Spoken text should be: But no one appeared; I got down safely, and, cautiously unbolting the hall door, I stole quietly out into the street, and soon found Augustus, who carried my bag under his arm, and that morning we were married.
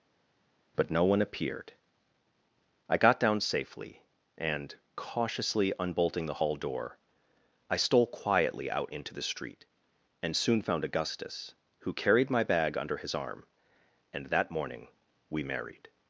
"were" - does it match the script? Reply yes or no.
no